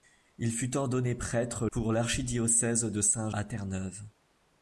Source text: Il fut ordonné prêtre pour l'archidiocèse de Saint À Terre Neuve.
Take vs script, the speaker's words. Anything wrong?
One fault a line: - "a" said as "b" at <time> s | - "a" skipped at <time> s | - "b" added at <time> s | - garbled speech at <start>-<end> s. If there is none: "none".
none